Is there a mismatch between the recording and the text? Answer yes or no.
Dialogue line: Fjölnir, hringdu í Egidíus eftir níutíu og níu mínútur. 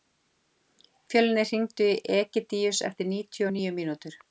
no